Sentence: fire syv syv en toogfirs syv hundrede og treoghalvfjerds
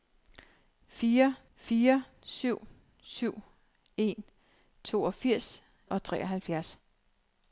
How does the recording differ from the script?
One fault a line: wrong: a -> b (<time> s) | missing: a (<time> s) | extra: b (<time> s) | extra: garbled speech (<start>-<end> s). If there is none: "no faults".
extra: fire (1.6 s)
missing: syv hundrede (5.6 s)